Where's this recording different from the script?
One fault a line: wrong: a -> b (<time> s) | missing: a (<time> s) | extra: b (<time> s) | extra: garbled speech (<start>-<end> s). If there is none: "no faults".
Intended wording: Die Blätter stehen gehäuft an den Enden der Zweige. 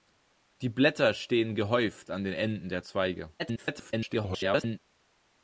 extra: garbled speech (3.4-4.8 s)